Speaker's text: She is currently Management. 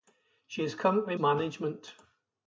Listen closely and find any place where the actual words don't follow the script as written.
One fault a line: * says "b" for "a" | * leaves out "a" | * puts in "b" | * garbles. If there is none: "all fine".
all fine